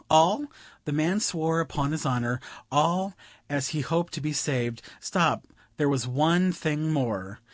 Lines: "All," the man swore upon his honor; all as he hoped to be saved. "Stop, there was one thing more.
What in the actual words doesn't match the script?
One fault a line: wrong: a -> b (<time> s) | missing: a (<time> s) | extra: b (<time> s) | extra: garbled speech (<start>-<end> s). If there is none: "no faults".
no faults